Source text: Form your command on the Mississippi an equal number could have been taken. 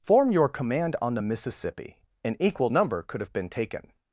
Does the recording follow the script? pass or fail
pass